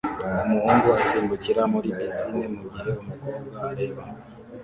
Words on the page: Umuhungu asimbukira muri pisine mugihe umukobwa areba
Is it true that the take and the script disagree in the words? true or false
false